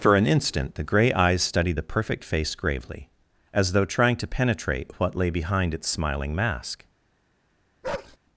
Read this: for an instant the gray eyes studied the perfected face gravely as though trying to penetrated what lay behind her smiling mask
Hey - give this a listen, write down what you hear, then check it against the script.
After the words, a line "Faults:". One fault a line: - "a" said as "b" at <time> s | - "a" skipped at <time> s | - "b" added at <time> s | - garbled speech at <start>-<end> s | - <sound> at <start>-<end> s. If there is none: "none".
for an instant the gray eyes studied the perfect face gravely as though trying to penetrate what lay behind its smiling mask
Faults:
- "perfected" said as "perfect" at 1.8 s
- "penetrated" said as "penetrate" at 4.3 s
- "her" said as "its" at 5.7 s
- bark at 7.8-8.2 s